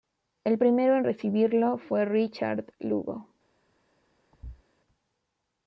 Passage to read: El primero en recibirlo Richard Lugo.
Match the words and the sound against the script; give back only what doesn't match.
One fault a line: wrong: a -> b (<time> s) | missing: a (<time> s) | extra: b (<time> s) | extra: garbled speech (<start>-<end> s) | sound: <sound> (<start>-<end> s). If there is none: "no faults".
extra: fue (1.8 s)
sound: thud (4.3-4.6 s)